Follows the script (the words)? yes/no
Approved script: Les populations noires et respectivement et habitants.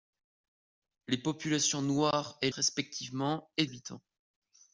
yes